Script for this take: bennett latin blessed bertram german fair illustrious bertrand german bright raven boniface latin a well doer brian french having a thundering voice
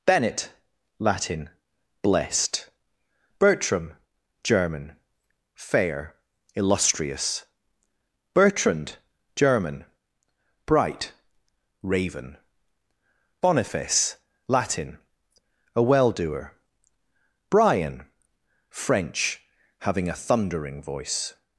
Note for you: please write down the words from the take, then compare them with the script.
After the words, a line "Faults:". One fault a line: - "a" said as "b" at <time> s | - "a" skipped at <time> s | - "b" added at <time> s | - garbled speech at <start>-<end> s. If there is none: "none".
bennett latin blessed bertram german fair illustrious bertrand german bright raven boniface latin a well doer brian french having a thundering voice
Faults:
none